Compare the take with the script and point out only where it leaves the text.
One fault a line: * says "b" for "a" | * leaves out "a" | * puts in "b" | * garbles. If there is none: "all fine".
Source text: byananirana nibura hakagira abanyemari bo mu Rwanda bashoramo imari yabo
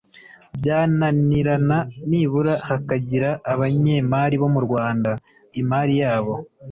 * leaves out "bashoramo"